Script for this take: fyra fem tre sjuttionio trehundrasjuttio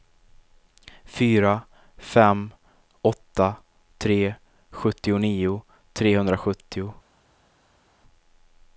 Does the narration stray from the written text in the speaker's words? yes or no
yes